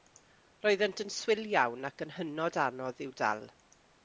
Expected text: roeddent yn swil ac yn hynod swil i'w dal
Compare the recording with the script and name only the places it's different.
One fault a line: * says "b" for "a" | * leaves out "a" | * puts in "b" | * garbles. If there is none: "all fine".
* puts in "iawn"
* says "anodd" for "swil"